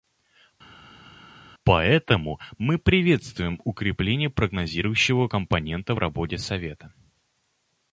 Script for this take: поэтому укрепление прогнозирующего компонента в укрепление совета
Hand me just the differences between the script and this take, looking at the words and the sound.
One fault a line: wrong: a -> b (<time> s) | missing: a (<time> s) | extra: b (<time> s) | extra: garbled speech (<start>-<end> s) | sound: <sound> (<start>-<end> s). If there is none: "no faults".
extra: мы приветствуем (2.6 s)
wrong: укрепление -> работе (6.0 s)